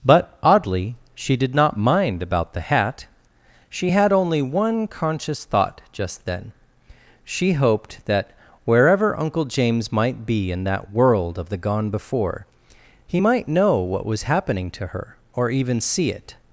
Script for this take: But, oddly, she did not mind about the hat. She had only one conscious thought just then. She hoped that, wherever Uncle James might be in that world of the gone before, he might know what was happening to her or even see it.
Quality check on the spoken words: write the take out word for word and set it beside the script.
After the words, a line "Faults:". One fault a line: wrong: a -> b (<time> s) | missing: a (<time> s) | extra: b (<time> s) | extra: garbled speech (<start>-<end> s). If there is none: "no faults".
But, oddly, she did not mind about the hat. She had only one conscious thought just then. She hoped that, wherever Uncle James might be in that world of the gone before, he might know what was happening to her or even see it.
Faults:
no faults